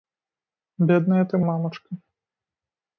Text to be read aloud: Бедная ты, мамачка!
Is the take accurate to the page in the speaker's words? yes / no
yes